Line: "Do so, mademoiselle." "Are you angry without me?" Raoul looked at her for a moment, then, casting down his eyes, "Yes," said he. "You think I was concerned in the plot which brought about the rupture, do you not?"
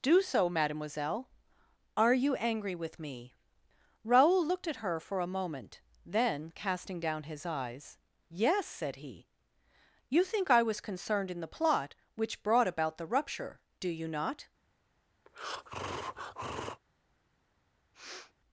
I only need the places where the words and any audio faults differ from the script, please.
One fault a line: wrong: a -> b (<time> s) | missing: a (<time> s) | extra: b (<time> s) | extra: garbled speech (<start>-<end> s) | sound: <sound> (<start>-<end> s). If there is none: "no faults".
wrong: without -> with (2.7 s)
sound: breath (15.3-16.8 s)
sound: sniff (17.9-18.3 s)